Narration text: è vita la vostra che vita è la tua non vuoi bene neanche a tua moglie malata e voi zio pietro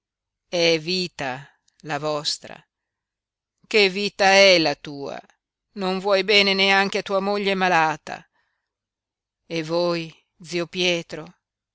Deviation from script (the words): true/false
false